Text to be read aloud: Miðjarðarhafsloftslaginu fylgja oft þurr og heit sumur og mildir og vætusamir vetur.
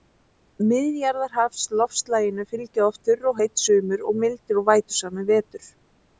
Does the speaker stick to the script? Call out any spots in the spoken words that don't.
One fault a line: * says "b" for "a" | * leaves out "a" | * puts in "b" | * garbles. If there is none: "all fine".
all fine